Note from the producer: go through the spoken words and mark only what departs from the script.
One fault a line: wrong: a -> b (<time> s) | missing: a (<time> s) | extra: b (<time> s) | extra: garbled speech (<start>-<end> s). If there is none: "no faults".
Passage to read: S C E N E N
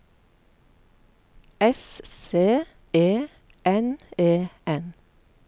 no faults